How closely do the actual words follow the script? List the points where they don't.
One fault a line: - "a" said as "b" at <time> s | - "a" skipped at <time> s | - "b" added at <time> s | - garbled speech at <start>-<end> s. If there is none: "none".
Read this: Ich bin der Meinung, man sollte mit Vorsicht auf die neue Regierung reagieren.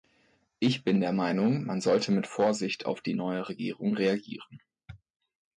none